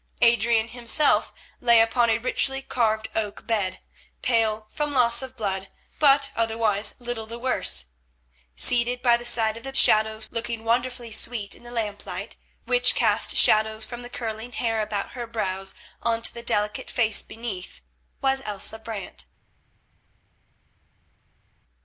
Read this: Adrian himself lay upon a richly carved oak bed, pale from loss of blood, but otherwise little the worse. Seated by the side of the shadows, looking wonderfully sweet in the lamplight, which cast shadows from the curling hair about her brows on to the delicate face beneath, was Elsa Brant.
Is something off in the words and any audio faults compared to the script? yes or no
no